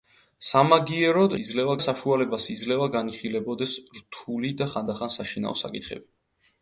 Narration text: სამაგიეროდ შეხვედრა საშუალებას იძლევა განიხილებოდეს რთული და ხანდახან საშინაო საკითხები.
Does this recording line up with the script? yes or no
no